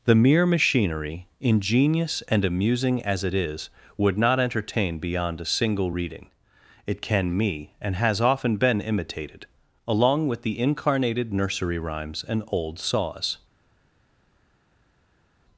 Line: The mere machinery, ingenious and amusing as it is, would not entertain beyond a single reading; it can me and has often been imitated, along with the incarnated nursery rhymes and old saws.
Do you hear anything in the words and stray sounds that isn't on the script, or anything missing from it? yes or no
no